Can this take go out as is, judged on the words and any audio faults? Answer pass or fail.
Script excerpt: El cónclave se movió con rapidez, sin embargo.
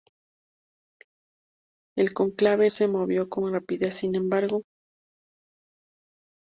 pass